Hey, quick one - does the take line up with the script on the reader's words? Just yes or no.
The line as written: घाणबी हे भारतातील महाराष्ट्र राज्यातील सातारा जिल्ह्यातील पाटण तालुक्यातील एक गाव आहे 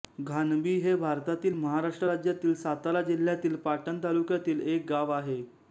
yes